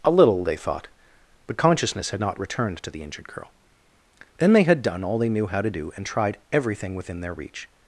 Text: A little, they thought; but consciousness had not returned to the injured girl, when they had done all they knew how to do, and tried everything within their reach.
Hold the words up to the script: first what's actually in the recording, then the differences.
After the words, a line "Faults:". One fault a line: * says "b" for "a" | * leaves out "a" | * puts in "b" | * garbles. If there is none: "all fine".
A little, they thought; but consciousness had not returned to the injured girl, then they had done all they knew how to do, and tried everything within their reach.
Faults:
* says "then" for "when"